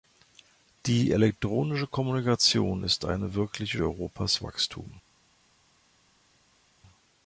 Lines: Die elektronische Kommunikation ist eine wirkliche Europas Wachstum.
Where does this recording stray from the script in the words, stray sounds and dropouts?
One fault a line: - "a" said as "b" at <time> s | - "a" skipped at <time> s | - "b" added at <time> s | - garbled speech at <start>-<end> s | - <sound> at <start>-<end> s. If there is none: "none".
none